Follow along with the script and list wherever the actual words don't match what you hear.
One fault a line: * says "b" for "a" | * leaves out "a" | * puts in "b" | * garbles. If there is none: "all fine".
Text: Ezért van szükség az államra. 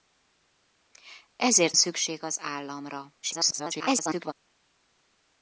* leaves out "van"
* garbles